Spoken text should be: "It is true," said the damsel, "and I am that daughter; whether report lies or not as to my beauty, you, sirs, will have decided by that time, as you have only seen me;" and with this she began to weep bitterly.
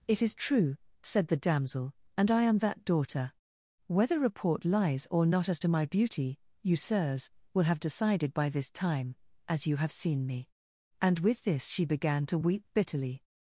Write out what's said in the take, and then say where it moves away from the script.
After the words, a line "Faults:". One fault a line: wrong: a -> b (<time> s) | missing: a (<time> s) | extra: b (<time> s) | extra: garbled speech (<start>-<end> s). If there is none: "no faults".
"It is true," said the damsel, "and I am that daughter; whether report lies or not as to my beauty, you, sirs, will have decided by this time, as you have seen me;" and with this she began to weep bitterly.
Faults:
wrong: that -> this (8.5 s)
missing: only (9.9 s)